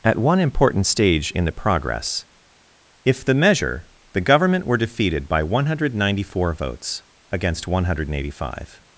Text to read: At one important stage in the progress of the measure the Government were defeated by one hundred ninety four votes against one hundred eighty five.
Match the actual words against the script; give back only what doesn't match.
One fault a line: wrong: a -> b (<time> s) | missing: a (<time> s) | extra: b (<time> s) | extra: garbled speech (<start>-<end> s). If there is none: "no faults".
wrong: of -> if (3.0 s)